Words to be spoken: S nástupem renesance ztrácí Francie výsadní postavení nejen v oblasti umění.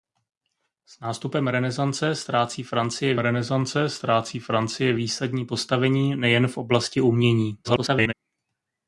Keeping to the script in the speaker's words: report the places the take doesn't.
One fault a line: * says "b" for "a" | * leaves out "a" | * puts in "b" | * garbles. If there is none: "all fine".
* puts in "renesance ztrácí Francie"
* garbles